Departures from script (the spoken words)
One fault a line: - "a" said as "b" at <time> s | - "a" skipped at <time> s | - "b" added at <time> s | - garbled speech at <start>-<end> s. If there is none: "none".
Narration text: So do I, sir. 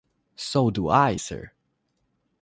none